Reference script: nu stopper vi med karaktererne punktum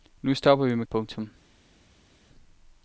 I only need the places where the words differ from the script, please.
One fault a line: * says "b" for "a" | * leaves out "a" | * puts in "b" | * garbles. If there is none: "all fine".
* leaves out "karaktererne"